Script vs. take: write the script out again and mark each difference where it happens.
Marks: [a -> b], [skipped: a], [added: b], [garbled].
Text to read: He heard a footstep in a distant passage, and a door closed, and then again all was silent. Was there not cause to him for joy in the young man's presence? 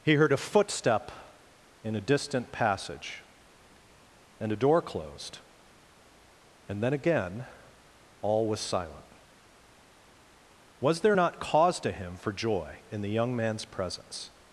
He heard a footstep in a distant passage, and a door closed, and then again all was silent. Was there not cause to him for joy in the young man's presence?